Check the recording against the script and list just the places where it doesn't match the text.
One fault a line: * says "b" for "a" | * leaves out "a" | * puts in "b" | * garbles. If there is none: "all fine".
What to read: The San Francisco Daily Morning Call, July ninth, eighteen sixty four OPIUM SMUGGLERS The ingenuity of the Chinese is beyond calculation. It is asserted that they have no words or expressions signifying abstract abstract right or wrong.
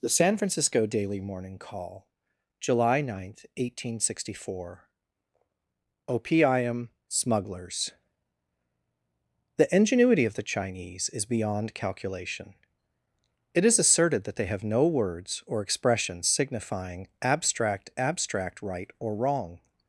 all fine